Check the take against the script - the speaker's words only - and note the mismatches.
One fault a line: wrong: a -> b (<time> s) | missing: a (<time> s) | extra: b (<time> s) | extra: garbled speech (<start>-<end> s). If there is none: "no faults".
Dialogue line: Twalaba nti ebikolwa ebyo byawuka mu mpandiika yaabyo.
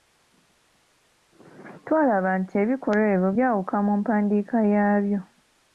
no faults